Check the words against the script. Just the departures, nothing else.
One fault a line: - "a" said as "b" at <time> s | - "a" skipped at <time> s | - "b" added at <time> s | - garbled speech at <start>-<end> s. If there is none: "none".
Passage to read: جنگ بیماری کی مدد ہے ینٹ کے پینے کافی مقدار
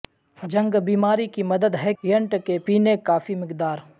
none